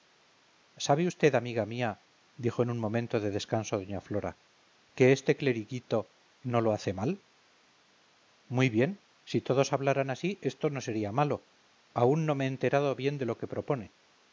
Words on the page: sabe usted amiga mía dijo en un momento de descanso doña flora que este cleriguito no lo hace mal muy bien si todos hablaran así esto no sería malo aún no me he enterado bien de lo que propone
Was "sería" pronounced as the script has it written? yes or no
yes